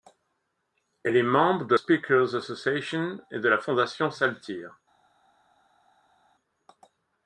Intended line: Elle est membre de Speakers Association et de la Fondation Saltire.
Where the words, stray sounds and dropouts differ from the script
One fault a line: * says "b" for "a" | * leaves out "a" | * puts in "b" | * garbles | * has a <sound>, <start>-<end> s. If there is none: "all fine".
all fine